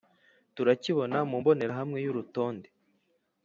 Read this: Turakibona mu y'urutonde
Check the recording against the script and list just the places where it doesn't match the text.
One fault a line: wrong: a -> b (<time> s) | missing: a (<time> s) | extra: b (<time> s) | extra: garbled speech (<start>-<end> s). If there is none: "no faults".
extra: mbonerahamwe (1.4 s)